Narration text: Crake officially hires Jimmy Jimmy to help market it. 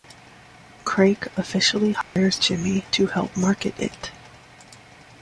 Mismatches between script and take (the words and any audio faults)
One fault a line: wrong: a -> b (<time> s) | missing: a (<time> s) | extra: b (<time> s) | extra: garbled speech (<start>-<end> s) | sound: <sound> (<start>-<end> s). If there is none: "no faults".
sound: dropout (2.0-2.2 s)
missing: Jimmy (2.8 s)